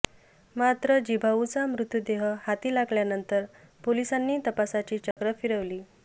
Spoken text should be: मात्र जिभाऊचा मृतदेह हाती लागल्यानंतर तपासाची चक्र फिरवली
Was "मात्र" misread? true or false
false